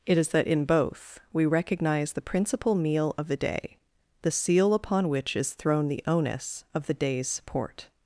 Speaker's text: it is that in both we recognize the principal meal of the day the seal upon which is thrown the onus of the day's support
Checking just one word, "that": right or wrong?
right